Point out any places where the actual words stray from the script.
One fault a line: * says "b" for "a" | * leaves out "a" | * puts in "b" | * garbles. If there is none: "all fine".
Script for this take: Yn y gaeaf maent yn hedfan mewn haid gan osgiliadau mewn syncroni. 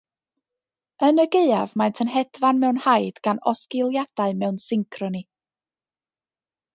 all fine